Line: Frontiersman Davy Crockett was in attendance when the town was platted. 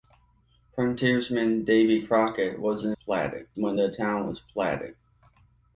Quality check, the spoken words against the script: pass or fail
fail